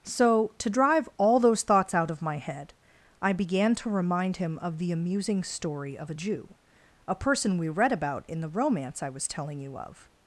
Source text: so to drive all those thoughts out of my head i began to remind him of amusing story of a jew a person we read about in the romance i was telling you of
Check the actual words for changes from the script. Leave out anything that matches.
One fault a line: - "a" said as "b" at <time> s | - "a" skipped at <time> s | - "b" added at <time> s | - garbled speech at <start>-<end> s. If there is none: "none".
- "the" added at 4.8 s